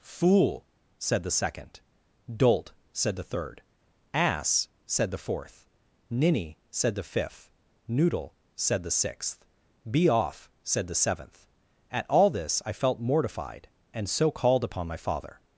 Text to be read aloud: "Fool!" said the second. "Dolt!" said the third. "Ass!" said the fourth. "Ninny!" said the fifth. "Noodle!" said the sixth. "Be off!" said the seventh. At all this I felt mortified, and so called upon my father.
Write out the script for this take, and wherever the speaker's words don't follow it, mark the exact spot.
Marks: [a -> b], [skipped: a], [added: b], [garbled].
"Fool!" said the second. "Dolt!" said the third. "Ass!" said the fourth. "Ninny!" said the fifth. "Noodle!" said the sixth. "Be off!" said the seventh. At all this I felt mortified, and so called upon my father.